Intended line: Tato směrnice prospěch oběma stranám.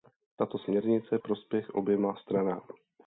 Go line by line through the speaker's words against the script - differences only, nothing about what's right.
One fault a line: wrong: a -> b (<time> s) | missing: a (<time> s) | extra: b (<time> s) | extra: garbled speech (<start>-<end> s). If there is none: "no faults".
no faults